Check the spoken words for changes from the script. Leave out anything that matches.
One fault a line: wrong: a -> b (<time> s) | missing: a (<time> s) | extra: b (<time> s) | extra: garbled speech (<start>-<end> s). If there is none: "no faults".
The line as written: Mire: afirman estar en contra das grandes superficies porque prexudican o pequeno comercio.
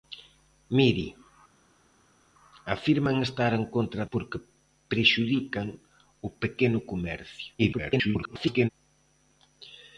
missing: das grandes superficies (4.0 s)
extra: garbled speech (7.6-8.7 s)